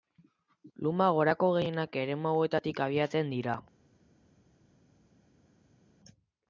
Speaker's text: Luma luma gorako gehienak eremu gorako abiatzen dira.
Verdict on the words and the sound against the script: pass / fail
fail